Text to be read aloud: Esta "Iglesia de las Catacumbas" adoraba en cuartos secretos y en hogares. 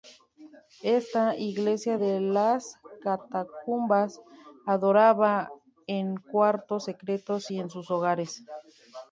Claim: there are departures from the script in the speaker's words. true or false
true